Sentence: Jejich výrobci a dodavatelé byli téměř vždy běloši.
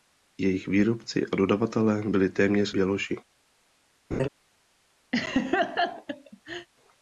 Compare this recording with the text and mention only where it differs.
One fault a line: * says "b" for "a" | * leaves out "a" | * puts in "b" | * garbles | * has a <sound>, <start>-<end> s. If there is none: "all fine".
* leaves out "vždy"
* has a laugh, 4.1-4.3 s
* has a laugh, 5.1-6.7 s